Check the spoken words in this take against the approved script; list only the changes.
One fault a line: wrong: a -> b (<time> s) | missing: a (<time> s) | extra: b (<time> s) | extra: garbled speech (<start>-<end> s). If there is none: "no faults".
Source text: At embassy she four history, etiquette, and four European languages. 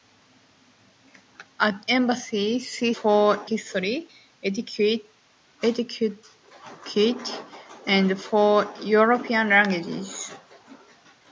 no faults